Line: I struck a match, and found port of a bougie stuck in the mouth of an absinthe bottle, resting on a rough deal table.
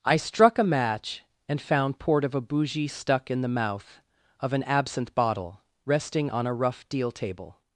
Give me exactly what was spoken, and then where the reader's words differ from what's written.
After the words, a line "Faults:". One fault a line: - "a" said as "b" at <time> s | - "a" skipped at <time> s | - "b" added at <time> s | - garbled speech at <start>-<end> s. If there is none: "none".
I struck a match, and found port of a bougie stuck in the mouth of an absinthe bottle, resting on a rough deal table.
Faults:
none